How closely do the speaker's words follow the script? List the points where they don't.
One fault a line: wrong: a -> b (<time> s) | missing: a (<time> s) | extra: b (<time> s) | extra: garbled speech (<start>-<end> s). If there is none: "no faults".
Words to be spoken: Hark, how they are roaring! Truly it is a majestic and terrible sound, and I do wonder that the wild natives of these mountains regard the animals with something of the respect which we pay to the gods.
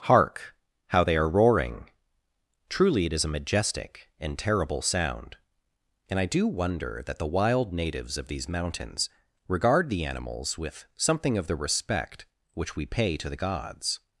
no faults